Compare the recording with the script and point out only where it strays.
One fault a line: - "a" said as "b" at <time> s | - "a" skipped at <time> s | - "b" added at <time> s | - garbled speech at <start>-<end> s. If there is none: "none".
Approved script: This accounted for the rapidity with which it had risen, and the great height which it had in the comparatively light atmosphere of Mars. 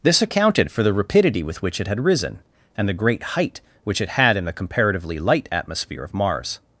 none